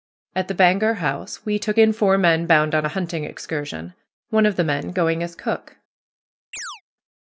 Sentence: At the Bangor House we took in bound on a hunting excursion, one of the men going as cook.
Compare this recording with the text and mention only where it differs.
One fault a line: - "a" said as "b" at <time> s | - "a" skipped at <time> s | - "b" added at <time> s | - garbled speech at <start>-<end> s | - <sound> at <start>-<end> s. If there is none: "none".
- "four men" added at 1.9 s
- chirp at 6.5-6.8 s